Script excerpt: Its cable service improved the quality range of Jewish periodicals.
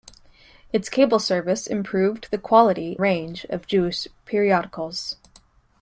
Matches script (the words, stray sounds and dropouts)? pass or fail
pass